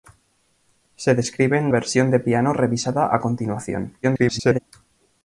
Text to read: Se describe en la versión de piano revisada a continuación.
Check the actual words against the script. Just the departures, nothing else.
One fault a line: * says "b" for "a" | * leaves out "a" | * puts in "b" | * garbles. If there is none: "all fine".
* leaves out "la"
* garbles